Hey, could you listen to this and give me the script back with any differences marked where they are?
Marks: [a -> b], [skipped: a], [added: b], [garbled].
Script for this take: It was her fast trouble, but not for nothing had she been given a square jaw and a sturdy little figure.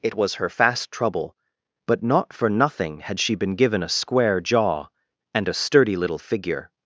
It was her fast trouble, but not for nothing had she been given a square jaw and a sturdy little figure.